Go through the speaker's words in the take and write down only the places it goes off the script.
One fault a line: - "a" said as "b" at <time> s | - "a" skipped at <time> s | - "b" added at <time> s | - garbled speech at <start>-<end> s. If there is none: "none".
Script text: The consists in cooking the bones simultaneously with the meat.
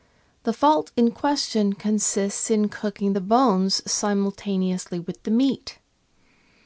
- "fault in question" added at 0.5 s